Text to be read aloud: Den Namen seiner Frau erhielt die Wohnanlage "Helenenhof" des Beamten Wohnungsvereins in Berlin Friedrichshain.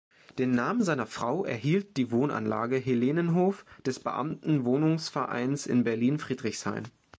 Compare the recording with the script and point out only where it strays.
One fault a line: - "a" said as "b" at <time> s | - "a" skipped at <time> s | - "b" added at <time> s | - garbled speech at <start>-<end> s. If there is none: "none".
none